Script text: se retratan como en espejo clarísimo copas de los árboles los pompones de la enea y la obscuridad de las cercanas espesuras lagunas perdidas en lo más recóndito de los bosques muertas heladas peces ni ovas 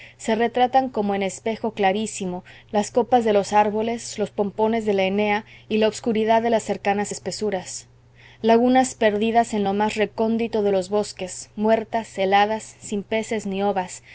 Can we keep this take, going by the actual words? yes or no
no